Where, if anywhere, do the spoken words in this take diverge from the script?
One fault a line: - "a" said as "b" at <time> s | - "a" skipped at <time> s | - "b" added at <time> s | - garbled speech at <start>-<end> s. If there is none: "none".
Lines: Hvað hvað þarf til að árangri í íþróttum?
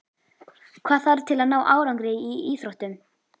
- "hvað" skipped at 1.0 s
- "ná" added at 1.5 s